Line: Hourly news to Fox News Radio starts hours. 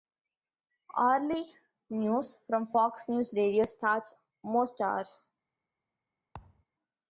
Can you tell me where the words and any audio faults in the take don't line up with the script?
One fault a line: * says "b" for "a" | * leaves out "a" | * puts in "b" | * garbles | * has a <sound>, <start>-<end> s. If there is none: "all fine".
* says "from" for "to"
* puts in "most"
* has a thud, 6.3-6.7 s